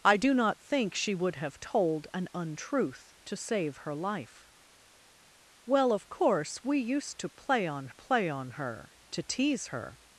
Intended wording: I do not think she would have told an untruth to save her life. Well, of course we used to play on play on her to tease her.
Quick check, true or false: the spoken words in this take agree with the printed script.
true